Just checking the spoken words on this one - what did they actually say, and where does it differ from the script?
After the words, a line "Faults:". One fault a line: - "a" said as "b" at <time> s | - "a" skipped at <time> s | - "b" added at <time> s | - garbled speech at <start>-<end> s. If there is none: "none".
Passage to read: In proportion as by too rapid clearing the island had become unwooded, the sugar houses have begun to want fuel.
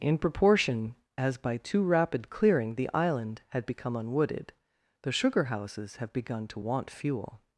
In proportion as by too rapid clearing the island had become unwooded, the sugar houses have begun to want fuel.
Faults:
none